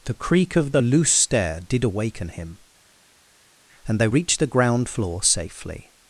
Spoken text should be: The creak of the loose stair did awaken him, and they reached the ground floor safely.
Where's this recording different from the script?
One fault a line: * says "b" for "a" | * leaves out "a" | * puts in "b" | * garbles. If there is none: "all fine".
all fine